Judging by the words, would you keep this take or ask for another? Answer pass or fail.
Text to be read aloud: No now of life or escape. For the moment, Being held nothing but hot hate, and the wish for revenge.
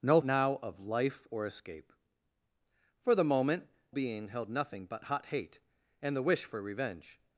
pass